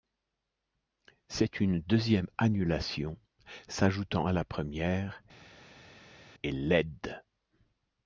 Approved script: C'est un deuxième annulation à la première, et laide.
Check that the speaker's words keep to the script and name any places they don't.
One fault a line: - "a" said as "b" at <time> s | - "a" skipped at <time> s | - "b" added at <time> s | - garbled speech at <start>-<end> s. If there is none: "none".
- "un" said as "une" at 1.6 s
- "s'ajoutant" added at 3.7 s